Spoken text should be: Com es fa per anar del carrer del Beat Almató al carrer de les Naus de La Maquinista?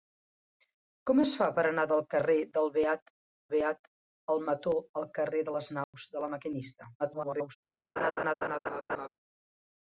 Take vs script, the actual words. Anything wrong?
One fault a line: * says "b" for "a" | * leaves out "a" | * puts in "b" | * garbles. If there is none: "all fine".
* puts in "Beat"
* garbles